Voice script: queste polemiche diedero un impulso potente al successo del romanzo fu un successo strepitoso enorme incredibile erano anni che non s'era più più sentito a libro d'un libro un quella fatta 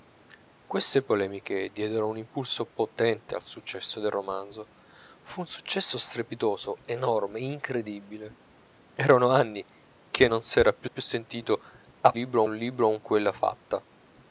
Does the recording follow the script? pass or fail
pass